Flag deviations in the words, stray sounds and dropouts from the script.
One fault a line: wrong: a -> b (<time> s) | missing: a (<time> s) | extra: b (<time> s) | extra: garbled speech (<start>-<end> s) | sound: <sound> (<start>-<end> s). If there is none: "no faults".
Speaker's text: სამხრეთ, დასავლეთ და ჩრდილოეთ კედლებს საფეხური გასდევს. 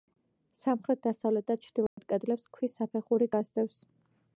sound: dropout (1.9-2.0 s)
extra: ქვის (2.6 s)